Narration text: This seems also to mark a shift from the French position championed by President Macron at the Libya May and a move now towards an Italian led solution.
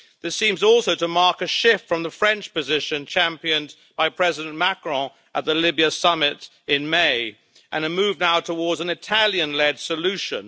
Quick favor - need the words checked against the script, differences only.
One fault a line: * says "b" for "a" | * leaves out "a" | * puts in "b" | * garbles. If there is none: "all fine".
* puts in "summit in"